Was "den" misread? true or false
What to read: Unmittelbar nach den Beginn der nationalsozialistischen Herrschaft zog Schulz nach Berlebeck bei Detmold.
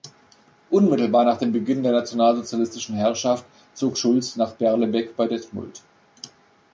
true